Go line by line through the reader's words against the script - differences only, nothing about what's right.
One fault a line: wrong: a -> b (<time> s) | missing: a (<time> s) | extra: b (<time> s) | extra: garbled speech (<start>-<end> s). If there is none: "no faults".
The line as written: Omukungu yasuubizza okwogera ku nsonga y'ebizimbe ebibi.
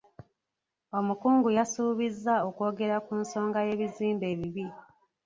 no faults